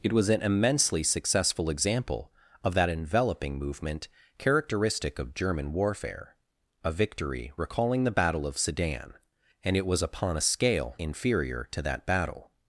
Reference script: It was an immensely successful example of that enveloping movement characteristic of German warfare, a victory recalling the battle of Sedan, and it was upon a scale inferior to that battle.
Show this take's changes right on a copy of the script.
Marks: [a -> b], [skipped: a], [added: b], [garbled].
It was an immensely successful example of that enveloping movement characteristic of German warfare, a victory recalling the battle of Sedan, and it was upon a scale inferior to that battle.